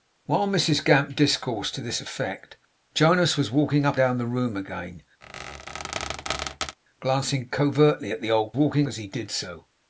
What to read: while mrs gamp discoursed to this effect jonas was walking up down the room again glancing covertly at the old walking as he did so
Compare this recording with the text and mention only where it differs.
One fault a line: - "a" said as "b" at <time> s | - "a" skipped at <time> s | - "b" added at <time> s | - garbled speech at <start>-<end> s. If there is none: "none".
none